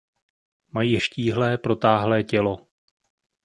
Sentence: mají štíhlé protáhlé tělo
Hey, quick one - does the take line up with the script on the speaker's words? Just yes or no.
yes